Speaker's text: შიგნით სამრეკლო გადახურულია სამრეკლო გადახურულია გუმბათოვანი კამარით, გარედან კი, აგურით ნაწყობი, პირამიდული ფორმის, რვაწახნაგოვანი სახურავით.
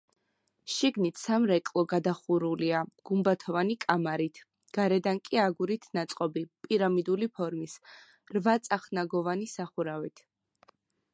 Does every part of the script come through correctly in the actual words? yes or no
no